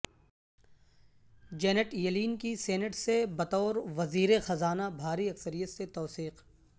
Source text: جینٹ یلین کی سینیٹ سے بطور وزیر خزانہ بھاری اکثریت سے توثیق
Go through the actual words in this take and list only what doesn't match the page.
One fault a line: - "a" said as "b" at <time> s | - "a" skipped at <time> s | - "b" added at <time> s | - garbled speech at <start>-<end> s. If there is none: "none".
none